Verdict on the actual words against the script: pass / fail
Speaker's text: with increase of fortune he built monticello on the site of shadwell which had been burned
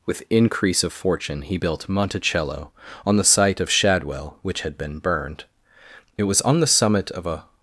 fail